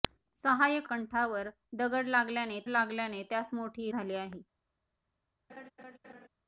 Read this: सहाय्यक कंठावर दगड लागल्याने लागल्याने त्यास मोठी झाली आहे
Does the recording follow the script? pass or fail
pass